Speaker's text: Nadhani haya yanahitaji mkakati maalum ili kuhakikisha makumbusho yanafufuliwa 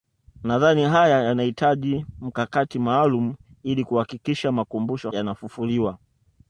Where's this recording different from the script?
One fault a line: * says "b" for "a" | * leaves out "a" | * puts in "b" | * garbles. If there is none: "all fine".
all fine